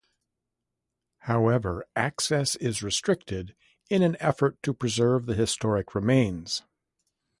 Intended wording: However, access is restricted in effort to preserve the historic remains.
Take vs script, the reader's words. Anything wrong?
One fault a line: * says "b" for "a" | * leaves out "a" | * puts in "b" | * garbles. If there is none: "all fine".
* puts in "an"